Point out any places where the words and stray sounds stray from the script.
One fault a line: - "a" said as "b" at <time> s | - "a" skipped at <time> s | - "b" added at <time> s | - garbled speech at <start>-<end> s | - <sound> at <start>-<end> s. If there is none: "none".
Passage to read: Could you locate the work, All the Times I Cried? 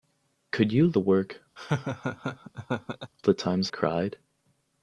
- "locate" skipped at 0.9 s
- "All" skipped at 1.4 s
- laugh at 1.6-3.1 s
- "I" skipped at 3.7 s